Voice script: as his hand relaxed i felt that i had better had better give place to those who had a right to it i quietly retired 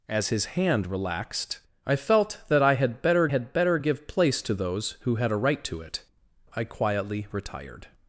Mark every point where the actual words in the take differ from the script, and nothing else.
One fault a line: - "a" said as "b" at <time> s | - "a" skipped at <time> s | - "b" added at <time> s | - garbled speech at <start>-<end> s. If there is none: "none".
none